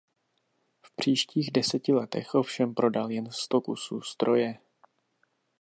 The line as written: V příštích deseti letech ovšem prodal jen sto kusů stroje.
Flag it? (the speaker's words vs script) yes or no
no